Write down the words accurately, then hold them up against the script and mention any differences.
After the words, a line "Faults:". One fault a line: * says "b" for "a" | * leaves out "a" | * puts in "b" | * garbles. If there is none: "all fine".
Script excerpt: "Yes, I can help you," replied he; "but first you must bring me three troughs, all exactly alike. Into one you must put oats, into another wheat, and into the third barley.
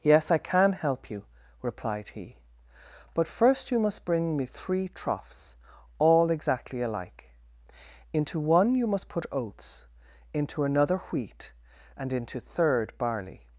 "Yes, I can help you," replied he; "but first you must bring me three troughs, all exactly alike. Into one you must put oats, into another wheat, and into third barley.
Faults:
* leaves out "the"